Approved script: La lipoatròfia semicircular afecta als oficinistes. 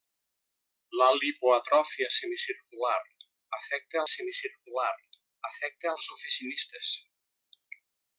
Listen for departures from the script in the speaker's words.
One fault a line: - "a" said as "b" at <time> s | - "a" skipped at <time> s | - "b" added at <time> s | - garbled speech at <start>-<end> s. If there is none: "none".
- "semicircular afecta" added at 4.1 s